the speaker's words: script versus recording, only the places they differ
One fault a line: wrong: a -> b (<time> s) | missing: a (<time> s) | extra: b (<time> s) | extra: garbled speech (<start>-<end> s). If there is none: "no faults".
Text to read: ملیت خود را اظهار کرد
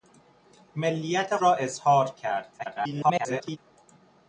missing: خود (1.4 s)
extra: garbled speech (2.6-3.6 s)